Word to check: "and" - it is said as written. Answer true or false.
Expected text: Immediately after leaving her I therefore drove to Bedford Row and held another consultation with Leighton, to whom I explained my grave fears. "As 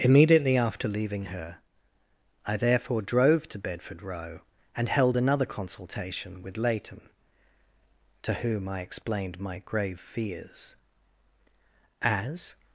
true